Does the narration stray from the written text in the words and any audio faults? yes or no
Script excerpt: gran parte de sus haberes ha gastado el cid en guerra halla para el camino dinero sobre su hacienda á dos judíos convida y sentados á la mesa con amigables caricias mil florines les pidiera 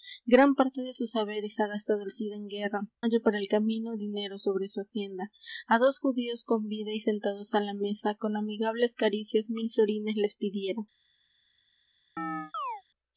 yes